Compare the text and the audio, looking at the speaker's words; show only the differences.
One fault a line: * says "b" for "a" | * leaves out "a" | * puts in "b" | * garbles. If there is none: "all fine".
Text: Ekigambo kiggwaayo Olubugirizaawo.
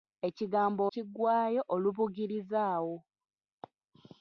all fine